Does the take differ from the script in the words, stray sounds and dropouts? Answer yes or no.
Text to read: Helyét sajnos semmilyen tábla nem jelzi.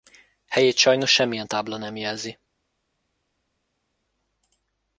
no